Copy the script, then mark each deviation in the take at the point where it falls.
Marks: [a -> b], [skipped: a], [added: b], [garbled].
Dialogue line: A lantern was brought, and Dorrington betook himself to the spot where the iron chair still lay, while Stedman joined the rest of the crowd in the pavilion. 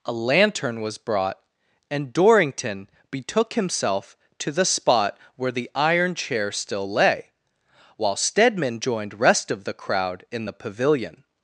A lantern was brought, and Dorrington betook himself to the spot where the iron chair still lay, while Stedman joined [skipped: the] rest of the crowd in the pavilion.